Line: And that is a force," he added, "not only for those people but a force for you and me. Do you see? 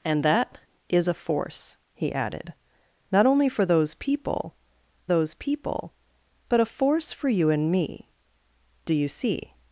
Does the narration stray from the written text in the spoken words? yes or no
yes